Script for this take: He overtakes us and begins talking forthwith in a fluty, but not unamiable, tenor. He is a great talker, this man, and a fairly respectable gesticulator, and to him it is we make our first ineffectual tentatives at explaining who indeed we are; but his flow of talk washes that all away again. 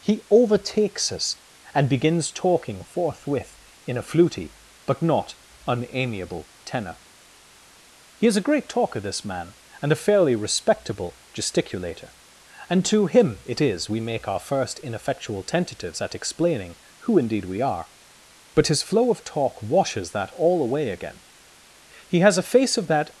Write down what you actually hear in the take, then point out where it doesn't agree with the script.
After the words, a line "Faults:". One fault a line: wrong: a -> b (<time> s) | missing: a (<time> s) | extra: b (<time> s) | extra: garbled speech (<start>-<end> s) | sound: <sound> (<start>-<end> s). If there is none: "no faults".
He overtakes us and begins talking forthwith in a fluty, but not unamiable, tenor. He is a great talker, this man, and a fairly respectable gesticulator, and to him it is we make our first ineffectual tentatives at explaining who indeed we are; but his flow of talk washes that all away again. He has a face of that
Faults:
extra: He has a face of that (22.1 s)